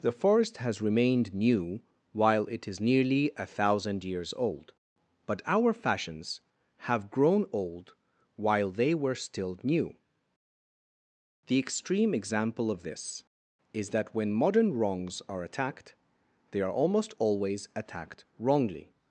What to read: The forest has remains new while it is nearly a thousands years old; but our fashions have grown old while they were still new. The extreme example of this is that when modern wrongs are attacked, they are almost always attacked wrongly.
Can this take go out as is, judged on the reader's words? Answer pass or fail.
fail